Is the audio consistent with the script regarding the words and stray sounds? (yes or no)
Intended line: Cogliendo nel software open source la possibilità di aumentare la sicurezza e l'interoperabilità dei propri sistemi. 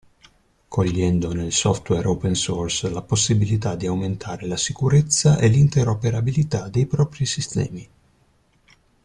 yes